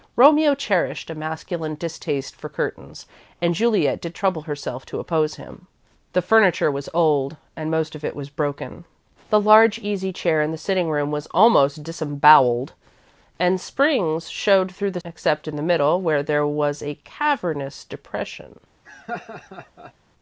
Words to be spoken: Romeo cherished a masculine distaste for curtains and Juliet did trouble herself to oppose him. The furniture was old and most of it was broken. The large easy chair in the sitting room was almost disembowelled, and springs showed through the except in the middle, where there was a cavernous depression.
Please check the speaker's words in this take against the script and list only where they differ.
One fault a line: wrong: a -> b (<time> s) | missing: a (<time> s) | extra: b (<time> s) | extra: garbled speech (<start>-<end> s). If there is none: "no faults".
no faults